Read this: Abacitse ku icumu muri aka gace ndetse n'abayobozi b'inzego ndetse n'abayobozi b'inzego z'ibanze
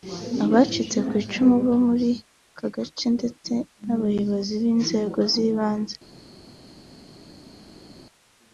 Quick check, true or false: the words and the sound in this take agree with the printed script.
false